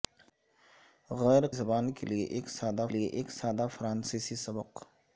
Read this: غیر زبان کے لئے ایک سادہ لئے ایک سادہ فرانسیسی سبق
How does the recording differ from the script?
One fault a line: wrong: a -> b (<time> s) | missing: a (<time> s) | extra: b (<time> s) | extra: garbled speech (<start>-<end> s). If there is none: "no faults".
no faults